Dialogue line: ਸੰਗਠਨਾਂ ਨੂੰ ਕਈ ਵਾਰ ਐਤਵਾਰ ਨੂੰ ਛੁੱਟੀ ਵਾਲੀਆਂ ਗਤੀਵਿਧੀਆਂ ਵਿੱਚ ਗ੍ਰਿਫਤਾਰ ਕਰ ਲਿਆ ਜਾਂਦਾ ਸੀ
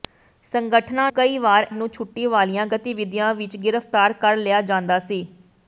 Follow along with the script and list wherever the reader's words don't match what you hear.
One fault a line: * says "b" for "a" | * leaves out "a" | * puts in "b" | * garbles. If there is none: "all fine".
* leaves out "ਨੂੰ"
* leaves out "ਐਤਵਾਰ"